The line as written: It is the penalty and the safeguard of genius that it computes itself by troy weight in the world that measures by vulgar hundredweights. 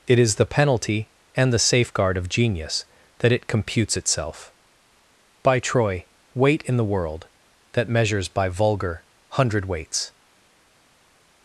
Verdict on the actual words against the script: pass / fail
pass